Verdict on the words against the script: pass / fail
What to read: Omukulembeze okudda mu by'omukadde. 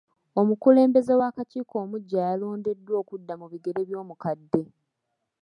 fail